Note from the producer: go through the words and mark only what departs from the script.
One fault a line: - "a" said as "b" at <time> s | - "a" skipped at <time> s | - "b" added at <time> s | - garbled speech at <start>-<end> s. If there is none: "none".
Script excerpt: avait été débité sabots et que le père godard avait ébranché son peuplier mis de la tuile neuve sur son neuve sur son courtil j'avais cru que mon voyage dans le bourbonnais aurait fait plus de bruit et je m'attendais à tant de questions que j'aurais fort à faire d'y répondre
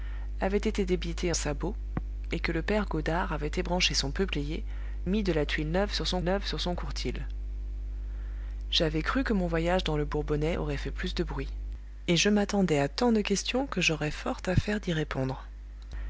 none